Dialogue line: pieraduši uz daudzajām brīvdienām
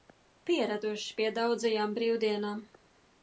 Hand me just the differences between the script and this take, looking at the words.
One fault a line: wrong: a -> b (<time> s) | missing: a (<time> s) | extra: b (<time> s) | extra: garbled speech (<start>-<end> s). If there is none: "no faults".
wrong: uz -> pie (1.2 s)